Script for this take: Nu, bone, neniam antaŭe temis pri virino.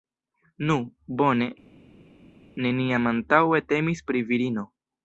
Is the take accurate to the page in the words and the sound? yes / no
yes